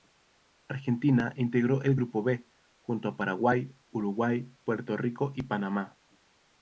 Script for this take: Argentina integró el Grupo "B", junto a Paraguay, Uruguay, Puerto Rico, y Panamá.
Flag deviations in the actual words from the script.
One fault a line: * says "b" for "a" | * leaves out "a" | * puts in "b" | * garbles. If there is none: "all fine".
all fine